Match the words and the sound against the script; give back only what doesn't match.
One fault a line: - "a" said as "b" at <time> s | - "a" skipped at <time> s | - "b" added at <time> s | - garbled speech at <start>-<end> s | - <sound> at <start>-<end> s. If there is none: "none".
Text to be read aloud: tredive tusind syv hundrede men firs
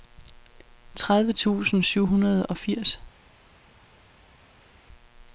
- "men" said as "og" at 2.5 s